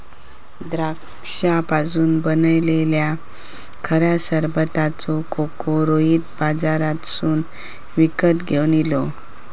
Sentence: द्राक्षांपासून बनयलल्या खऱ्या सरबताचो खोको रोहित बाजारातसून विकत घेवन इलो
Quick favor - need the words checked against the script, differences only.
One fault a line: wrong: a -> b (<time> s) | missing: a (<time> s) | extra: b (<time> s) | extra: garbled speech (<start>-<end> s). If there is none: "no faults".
no faults